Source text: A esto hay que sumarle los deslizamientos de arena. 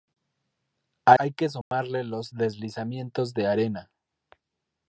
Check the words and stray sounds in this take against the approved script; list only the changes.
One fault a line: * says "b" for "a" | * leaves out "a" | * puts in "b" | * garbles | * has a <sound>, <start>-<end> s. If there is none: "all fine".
* leaves out "esto"
* has a dropout, 1.6-1.7 s